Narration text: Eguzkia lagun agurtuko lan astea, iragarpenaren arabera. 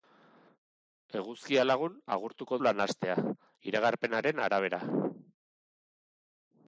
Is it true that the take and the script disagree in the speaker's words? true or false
false